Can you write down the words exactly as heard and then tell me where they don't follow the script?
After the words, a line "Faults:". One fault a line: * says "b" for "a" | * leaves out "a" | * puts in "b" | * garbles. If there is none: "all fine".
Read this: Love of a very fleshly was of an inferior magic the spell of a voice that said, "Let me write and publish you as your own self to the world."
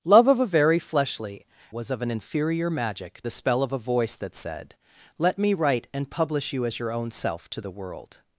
Love of a very fleshly was of an inferior magic the spell of a voice that said, "Let me write and publish you as your own self to the world."
Faults:
all fine